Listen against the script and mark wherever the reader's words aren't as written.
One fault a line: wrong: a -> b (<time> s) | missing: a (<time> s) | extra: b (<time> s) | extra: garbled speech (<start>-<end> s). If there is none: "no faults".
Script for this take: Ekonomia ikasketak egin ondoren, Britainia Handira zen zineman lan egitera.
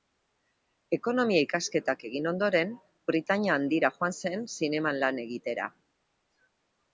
extra: joan (4.0 s)